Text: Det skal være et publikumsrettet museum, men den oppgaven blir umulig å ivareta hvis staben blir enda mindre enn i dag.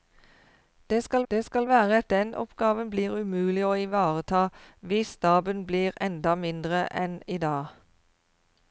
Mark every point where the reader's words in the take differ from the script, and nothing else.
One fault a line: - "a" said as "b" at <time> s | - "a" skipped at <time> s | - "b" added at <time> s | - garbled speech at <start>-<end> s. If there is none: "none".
- "det skal" added at 1.3 s
- "publikumsrettet museum men" skipped at 2.1 s